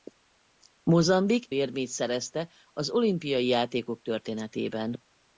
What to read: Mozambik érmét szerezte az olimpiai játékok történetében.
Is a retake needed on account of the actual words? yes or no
no